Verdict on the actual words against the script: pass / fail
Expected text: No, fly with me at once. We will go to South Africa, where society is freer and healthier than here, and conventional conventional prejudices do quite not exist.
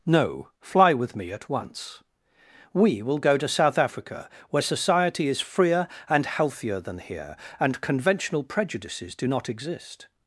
fail